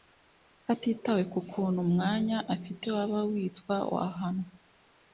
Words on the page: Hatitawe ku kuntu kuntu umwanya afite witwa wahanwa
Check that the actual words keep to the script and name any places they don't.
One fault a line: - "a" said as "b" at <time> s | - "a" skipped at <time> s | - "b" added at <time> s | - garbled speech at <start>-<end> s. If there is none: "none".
- "kuntu" skipped at 1.8 s
- "waba" added at 3.0 s